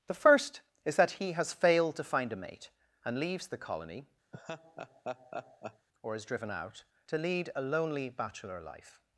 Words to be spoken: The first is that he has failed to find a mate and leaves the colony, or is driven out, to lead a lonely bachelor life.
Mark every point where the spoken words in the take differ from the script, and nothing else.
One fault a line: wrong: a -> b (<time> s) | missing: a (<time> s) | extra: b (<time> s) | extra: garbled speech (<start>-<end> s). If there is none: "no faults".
no faults